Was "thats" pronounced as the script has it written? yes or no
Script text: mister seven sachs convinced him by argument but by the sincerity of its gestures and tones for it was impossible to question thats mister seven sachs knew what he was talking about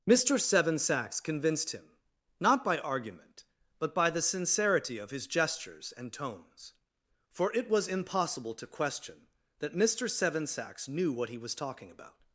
no